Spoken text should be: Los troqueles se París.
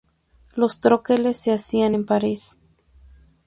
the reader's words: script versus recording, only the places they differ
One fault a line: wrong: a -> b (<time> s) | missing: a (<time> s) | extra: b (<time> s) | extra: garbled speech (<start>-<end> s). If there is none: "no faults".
extra: hacían en (1.5 s)